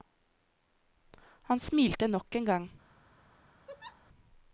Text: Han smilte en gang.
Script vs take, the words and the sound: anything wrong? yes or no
yes